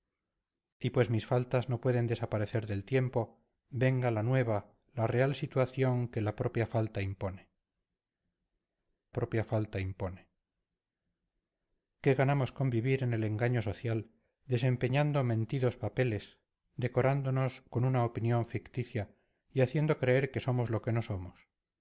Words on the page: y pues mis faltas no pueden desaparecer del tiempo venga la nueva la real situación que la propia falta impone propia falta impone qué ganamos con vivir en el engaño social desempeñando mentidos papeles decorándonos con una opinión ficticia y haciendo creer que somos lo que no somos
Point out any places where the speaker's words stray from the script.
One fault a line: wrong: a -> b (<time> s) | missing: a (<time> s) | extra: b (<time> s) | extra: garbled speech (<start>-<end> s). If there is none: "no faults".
no faults